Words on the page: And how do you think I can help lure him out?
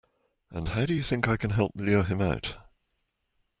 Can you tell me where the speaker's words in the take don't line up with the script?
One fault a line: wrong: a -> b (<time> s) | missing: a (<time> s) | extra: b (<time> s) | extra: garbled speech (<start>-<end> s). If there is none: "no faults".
no faults